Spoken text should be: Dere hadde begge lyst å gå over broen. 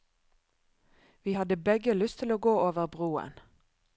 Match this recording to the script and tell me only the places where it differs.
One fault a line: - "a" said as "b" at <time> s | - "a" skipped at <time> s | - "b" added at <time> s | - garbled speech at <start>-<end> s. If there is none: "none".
- "Dere" said as "Vi" at 1.2 s
- "til" added at 2.2 s